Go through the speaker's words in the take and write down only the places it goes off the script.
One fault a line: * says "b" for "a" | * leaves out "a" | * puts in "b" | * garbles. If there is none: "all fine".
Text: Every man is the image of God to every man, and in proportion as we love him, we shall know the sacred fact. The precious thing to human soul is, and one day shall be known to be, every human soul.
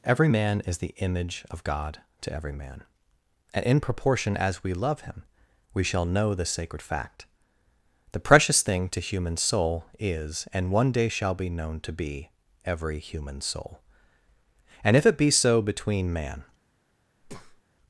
* puts in "And if it be so between man"